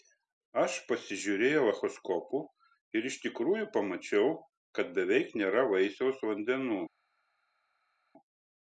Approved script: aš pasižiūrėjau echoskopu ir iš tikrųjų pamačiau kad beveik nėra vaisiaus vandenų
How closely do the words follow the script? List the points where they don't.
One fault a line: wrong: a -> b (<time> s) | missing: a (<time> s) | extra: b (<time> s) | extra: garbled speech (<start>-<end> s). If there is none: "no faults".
no faults